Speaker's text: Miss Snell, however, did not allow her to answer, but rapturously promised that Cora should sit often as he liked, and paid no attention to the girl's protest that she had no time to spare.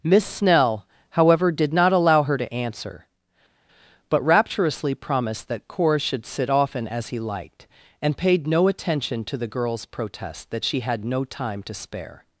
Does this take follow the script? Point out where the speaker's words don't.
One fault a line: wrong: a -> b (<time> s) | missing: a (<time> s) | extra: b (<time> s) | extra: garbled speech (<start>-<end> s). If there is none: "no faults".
no faults